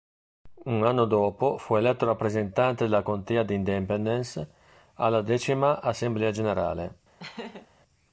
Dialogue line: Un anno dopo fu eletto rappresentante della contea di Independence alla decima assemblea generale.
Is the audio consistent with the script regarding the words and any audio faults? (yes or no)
no